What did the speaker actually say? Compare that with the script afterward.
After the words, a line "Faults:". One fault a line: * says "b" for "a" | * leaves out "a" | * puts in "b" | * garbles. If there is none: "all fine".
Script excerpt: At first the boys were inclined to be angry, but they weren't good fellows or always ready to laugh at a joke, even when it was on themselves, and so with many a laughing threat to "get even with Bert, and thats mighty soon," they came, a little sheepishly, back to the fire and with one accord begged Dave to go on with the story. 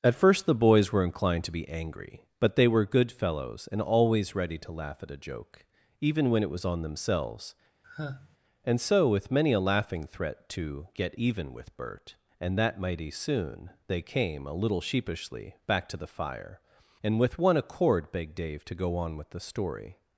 At first the boys were inclined to be angry, but they were good fellows and always ready to laugh at a joke, even when it was on themselves, and so with many a laughing threat to "get even with Bert, and that mighty soon," they came, a little sheepishly, back to the fire and with one accord begged Dave to go on with the story.
Faults:
* says "were" for "weren't"
* says "and" for "or"
* says "that" for "thats"